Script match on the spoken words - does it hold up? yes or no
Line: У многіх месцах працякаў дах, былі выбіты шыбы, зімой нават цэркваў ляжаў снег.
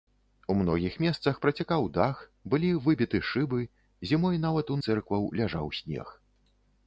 yes